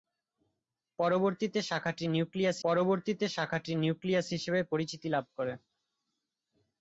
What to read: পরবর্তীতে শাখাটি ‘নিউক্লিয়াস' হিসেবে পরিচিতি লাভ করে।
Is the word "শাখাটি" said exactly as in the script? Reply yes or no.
yes